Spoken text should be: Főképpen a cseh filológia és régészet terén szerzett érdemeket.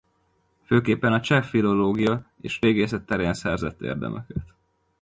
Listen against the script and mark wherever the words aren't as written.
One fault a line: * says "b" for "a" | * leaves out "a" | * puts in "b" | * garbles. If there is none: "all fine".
all fine